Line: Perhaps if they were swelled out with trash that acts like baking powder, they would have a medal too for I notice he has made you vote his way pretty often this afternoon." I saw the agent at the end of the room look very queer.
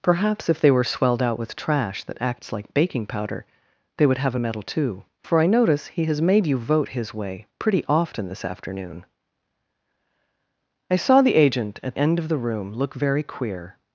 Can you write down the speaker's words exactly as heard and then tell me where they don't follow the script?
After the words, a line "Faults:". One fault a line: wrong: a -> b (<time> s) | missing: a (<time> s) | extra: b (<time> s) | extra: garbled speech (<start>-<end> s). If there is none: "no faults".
Perhaps if they were swelled out with trash that acts like baking powder, they would have a medal too for I notice he has made you vote his way pretty often this afternoon." I saw the agent at end of the room look very queer.
Faults:
missing: the (12.0 s)